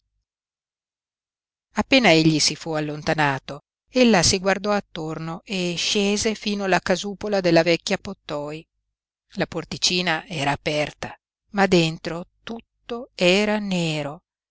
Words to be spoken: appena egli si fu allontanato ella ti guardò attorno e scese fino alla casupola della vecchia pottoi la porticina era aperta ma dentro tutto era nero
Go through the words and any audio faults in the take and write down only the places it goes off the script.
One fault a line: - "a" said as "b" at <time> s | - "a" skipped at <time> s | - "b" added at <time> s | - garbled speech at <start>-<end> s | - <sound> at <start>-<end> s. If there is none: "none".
- "ti" said as "si" at 4.2 s